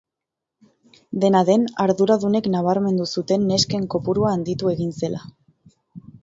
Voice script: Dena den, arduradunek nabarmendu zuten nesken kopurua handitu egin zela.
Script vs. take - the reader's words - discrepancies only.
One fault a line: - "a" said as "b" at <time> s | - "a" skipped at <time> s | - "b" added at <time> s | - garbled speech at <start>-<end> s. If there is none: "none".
none